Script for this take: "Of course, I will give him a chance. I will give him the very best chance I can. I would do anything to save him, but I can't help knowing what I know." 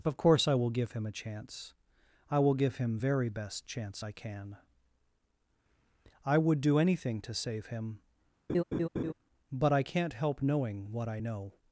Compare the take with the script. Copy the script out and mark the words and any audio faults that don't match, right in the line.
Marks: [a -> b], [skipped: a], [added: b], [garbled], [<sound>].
"Of course, I will give him a chance. I will give him [skipped: the] very best chance I can. I would do anything to save him, [laugh] but I can't help knowing what I know."